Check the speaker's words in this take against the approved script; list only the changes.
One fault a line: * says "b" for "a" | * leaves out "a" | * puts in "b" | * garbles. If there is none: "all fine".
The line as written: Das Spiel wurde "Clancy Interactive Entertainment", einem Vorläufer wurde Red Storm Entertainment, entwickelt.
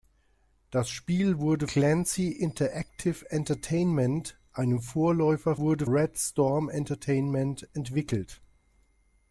all fine